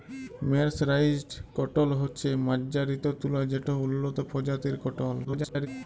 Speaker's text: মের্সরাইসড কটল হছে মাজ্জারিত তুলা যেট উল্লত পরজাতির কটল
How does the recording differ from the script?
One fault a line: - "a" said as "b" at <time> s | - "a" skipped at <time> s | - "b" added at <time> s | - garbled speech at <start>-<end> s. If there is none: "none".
- garbled speech at 5.2-5.7 s